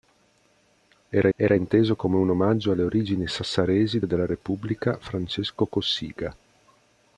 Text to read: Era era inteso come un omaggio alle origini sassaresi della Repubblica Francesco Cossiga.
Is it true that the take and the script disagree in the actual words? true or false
false